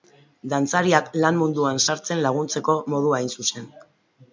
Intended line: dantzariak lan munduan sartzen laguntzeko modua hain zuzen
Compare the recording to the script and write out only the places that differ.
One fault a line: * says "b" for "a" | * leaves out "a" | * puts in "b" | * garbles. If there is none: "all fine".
all fine